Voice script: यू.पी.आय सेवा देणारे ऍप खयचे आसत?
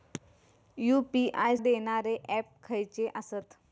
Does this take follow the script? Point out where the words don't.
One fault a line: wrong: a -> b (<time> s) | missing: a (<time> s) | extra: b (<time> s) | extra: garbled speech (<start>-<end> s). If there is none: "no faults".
missing: सेवा (1.6 s)